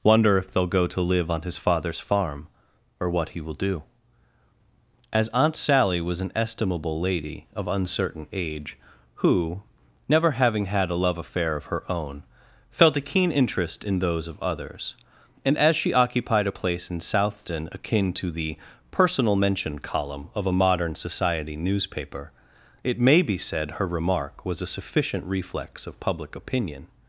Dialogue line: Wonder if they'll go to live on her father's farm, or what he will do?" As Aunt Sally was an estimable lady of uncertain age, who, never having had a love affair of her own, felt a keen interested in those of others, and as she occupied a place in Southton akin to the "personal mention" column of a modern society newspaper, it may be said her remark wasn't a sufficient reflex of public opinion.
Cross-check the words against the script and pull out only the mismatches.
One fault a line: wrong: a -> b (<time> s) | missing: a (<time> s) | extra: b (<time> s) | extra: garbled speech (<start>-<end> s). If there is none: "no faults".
wrong: her -> his (1.4 s)
wrong: interested -> interest (13.3 s)
wrong: wasn't -> was (24.5 s)